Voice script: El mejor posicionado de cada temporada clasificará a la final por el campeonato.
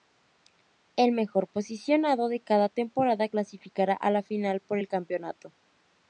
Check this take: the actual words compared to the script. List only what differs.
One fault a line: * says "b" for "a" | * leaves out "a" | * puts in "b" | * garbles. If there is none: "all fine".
all fine